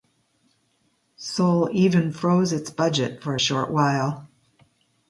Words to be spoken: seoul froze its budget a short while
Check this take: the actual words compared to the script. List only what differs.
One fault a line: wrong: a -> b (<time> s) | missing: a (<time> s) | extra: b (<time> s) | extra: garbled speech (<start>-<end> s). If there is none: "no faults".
extra: even (1.7 s)
extra: for (3.2 s)